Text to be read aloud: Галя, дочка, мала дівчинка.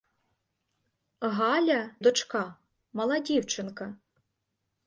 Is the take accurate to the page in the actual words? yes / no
yes